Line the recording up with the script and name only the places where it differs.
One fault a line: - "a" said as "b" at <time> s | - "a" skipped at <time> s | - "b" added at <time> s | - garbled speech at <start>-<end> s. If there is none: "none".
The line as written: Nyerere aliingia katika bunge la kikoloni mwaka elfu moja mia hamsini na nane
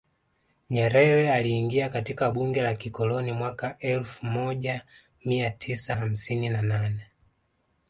- "tisa" added at 5.5 s